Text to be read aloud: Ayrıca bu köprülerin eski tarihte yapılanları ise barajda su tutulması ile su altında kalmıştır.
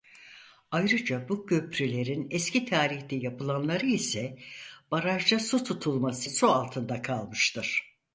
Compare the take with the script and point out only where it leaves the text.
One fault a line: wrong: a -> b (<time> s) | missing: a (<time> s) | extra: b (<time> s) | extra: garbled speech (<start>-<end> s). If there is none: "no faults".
missing: ile (6.3 s)